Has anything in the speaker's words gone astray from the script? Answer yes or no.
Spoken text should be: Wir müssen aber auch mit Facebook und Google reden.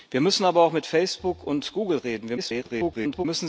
yes